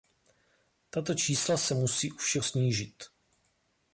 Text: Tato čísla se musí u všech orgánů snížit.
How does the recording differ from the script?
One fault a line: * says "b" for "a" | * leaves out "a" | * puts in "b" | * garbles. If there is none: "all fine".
* leaves out "orgánů"